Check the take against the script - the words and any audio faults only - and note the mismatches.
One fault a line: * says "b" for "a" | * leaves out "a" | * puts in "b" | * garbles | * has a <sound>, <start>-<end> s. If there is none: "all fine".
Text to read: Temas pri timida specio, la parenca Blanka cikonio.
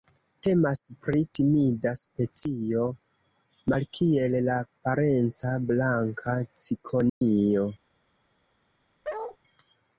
* puts in "malkiel"
* has a dropout, 7.1-7.2 s
* has a bark, 9.0-9.4 s